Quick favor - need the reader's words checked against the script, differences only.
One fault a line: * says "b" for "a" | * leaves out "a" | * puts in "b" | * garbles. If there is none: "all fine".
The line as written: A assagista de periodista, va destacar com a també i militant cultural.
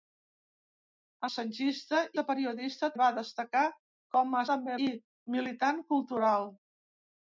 all fine